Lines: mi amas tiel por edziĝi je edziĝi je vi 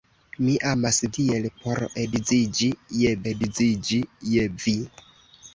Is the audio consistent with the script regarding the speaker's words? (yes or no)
yes